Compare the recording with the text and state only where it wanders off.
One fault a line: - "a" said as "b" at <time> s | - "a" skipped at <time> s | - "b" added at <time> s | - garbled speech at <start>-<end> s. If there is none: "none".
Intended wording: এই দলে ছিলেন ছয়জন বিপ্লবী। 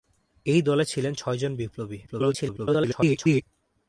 - garbled speech at 2.1-3.4 s